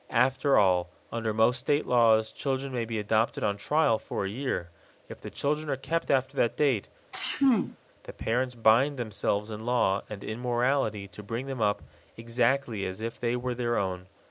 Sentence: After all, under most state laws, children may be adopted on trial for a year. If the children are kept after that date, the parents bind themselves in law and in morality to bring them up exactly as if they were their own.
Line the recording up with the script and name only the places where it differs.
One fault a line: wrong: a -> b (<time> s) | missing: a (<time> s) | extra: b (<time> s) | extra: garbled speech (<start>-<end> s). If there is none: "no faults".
no faults